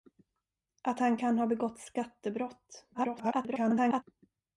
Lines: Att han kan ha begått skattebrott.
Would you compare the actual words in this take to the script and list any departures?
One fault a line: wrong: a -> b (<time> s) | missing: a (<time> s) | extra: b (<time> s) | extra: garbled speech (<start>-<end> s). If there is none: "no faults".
extra: garbled speech (2.9-4.0 s)